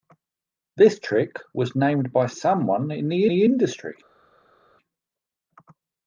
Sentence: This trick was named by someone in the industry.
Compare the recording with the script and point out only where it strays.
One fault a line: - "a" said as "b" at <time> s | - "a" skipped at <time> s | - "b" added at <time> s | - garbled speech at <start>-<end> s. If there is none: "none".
- "the" added at 3.3 s